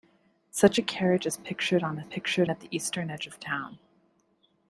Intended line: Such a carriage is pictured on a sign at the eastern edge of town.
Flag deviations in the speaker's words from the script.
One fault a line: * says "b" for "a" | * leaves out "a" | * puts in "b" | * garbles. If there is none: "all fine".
* says "pictured" for "sign"